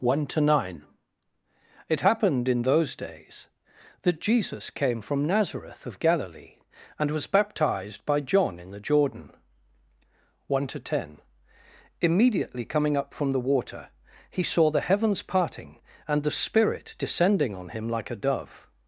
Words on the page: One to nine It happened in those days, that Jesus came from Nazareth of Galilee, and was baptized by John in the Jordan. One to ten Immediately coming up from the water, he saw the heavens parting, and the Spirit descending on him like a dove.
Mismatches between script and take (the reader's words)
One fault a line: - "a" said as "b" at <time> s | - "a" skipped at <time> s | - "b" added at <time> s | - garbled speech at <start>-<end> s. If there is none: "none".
none